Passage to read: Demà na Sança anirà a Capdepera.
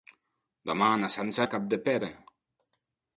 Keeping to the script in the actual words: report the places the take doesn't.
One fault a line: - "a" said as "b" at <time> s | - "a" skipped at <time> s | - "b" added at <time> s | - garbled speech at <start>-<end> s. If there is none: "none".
- "anirà" skipped at 1.4 s